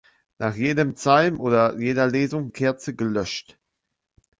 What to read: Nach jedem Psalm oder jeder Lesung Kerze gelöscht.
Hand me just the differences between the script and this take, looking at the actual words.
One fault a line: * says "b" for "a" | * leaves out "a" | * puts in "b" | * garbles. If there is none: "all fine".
all fine